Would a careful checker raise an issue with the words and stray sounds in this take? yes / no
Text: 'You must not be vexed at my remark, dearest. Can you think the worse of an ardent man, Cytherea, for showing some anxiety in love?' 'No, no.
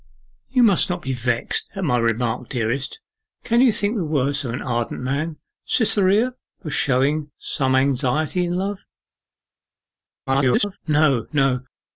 yes